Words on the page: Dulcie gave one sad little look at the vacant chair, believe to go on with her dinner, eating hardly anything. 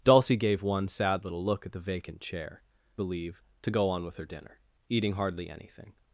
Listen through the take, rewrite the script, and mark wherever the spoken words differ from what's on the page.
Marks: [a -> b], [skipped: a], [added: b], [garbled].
Dulcie gave one sad little look at the vacant chair, believe to go on with her dinner, eating hardly anything.